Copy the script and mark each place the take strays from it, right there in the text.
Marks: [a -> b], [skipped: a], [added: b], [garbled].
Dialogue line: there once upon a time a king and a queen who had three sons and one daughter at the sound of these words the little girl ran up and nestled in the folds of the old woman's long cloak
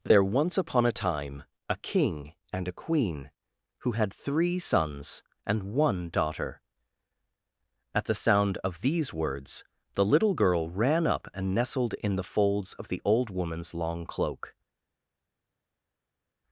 there once upon a time a king and a queen who had three sons and one daughter at the sound of these words the little girl ran up and nestled in the folds of the old woman's long cloak